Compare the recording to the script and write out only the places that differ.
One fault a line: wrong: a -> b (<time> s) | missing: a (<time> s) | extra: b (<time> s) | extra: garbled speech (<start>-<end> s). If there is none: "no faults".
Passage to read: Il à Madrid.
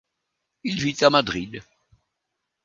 extra: vit (0.8 s)